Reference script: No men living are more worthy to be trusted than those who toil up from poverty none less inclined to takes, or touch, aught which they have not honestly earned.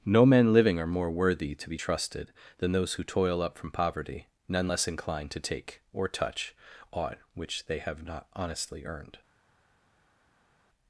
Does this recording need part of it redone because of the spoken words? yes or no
yes